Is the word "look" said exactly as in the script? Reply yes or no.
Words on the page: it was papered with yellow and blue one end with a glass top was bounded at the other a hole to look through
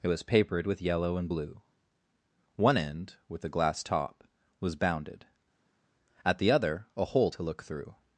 yes